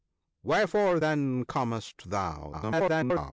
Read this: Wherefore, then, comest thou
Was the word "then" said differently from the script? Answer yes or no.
no